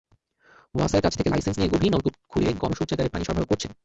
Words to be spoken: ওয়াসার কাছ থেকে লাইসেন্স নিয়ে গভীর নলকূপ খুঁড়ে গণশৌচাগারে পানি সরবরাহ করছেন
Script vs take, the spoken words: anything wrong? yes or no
no